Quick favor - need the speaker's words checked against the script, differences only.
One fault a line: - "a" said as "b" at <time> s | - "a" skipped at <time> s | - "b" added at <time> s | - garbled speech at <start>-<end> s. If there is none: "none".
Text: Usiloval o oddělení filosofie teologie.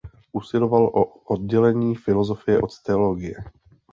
- "od" added at 2.6 s